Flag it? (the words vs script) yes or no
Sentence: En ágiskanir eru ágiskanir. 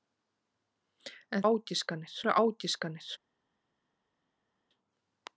no